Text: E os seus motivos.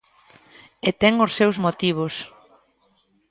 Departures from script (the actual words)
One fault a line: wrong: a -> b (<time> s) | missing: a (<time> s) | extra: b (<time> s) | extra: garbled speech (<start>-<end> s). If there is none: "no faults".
extra: ten (1.0 s)